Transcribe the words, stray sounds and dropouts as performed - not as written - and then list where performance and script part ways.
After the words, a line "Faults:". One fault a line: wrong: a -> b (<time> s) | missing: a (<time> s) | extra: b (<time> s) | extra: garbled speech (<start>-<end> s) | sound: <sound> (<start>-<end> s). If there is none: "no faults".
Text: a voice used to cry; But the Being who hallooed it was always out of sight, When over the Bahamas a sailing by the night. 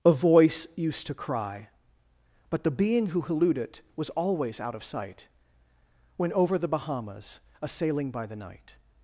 a voice used to cry; But the Being who hallooed it was always out of sight, When over the Bahamas a sailing by the night.
Faults:
no faults